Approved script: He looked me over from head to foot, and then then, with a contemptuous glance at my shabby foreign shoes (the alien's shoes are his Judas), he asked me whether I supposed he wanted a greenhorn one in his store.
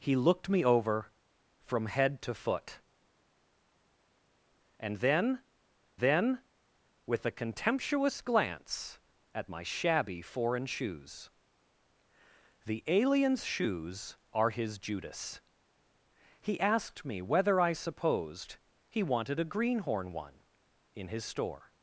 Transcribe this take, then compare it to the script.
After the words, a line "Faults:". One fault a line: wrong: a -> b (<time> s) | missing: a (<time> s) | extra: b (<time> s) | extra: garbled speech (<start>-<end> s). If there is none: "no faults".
He looked me over from head to foot, and then then, with a contemptuous glance at my shabby foreign shoes (the alien's shoes are his Judas), he asked me whether I supposed he wanted a greenhorn one in his store.
Faults:
no faults